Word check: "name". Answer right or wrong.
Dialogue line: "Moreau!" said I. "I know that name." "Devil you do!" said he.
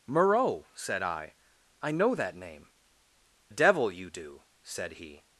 right